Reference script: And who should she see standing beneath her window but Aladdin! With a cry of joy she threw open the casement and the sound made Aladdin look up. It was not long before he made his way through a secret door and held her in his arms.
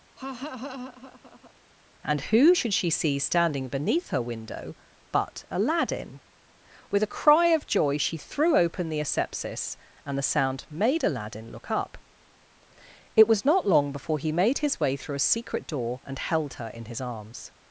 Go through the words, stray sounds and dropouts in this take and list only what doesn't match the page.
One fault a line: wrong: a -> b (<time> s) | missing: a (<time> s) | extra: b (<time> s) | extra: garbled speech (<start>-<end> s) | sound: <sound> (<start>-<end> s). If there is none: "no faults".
sound: laugh (0.2-1.5 s)
wrong: casement -> asepsis (9.0 s)